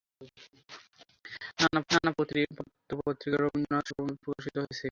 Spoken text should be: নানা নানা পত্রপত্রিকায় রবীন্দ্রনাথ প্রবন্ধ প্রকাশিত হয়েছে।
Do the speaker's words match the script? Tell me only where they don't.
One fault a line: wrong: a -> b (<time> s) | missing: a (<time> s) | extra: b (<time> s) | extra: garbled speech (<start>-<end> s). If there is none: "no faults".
no faults